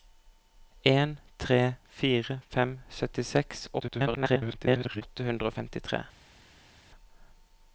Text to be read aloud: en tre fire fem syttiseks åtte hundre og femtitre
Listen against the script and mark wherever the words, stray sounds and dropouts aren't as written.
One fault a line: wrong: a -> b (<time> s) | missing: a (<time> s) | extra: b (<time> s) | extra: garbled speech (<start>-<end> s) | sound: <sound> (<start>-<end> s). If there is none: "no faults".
extra: garbled speech (3.8-5.0 s)